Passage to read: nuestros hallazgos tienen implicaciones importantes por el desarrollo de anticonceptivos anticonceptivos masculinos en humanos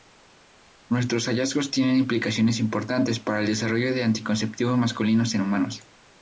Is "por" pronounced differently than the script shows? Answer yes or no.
yes